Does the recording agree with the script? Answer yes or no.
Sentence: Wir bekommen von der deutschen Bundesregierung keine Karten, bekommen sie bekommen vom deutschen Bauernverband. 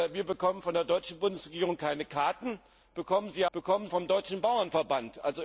yes